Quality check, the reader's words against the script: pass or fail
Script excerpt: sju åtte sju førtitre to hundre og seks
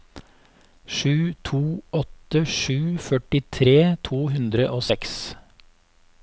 fail